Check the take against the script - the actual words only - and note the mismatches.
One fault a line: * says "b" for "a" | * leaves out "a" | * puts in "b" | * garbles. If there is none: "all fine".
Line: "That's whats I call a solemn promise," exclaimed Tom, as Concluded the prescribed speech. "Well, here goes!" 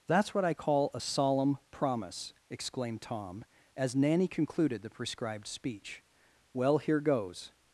* says "what" for "whats"
* puts in "Nanny"